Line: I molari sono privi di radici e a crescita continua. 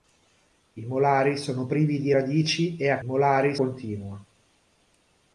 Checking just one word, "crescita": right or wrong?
wrong